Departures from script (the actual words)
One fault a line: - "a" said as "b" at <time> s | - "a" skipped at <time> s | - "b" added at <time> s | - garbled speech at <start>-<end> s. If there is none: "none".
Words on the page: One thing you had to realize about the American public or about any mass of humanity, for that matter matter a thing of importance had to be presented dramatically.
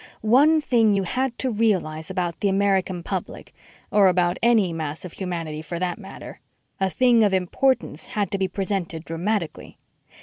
- "matter" skipped at 6.4 s